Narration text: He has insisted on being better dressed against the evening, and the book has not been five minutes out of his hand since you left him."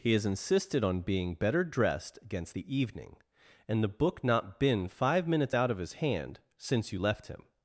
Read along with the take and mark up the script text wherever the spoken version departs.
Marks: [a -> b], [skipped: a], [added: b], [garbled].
He has insisted on being better dressed against the evening, and the book [skipped: has] not been five minutes out of his hand since you left him."